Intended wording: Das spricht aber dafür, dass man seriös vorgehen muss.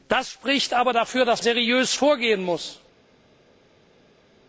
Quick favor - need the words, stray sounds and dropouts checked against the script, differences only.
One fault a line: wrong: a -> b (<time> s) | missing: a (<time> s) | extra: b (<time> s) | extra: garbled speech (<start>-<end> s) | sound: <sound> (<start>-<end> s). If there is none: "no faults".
missing: man (1.4 s)